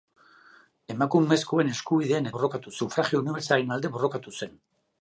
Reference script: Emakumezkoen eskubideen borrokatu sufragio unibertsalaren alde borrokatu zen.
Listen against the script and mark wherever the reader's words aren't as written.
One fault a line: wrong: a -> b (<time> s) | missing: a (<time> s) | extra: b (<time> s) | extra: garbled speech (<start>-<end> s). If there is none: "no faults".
no faults